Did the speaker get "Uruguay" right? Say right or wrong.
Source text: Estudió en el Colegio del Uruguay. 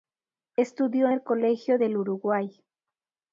right